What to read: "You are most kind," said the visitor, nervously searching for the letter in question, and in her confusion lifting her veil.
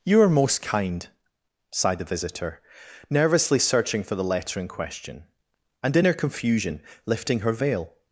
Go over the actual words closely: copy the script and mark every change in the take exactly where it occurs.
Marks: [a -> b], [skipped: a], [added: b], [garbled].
"You are most kind," [said -> sighed] the visitor, nervously searching for the letter in question, and in her confusion lifting her veil.